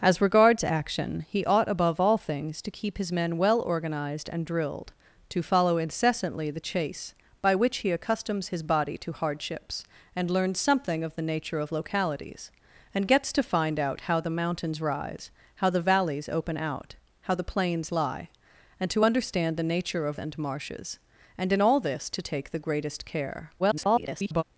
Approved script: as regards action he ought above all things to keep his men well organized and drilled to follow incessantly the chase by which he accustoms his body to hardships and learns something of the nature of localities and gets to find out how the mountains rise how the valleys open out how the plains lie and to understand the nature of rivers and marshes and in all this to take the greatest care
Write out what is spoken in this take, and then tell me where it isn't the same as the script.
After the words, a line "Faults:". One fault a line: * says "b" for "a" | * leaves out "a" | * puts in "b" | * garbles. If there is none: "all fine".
as regards action he ought above all things to keep his men well organized and drilled to follow incessantly the chase by which he accustoms his body to hardships and learns something of the nature of localities and gets to find out how the mountains rise how the valleys open out how the plains lie and to understand the nature of and marshes and in all this to take the greatest care [garbled]
Faults:
* leaves out "rivers"
* garbles